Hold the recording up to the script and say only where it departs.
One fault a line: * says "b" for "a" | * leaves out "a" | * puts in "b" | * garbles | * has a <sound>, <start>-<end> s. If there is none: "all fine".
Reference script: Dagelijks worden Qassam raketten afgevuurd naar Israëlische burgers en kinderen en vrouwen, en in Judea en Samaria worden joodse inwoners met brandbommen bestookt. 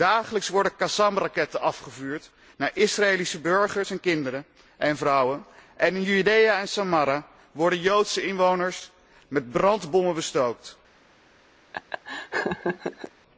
* has a laugh, 11.7-13.1 s